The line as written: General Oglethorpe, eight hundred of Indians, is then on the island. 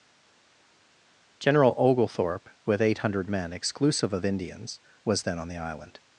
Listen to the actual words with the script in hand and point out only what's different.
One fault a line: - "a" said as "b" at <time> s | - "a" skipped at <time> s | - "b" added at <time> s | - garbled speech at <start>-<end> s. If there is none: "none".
- "with" added at 2.6 s
- "men exclusive" added at 3.3 s
- "is" said as "was" at 5.0 s